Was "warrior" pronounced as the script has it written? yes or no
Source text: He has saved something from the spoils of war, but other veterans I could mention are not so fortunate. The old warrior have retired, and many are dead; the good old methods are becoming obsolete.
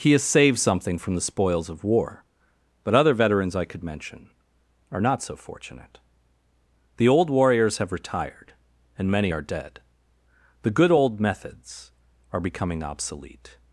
no